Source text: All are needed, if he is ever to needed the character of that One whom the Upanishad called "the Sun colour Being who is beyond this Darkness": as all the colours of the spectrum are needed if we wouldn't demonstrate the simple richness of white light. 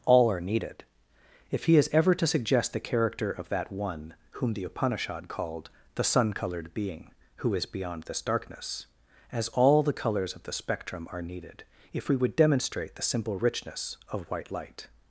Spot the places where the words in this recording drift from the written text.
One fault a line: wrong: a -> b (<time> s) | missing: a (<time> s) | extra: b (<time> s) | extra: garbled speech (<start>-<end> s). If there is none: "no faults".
wrong: needed -> suggest (2.2 s)
wrong: colour -> coloured (6.3 s)
wrong: wouldn't -> would (12.2 s)